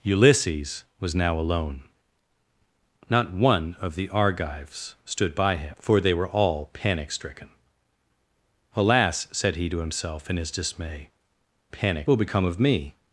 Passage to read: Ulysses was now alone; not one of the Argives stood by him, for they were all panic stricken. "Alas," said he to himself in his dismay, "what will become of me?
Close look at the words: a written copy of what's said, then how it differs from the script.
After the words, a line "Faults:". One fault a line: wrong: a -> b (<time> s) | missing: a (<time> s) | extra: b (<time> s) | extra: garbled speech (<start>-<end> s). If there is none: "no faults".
Ulysses was now alone; not one of the Argives stood by him, for they were all panic stricken. "Alas," said he to himself in his dismay, "panic will become of me?
Faults:
wrong: what -> panic (11.7 s)